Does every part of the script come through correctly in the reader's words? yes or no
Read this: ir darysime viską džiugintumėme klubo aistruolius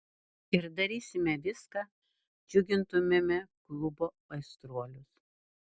yes